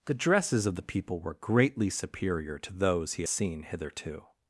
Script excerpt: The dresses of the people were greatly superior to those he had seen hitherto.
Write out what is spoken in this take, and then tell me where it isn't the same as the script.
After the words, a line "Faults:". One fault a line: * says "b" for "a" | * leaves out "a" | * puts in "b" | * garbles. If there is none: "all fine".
The dresses of the people were greatly superior to those he seen hitherto.
Faults:
* leaves out "had"